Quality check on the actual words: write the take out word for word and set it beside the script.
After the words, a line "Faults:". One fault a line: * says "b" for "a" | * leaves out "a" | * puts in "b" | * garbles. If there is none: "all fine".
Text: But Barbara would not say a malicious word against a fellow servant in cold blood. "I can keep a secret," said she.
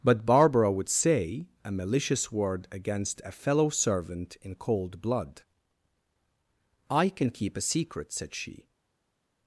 But Barbara would say a malicious word against a fellow servant in cold blood. "I can keep a secret," said she.
Faults:
* leaves out "not"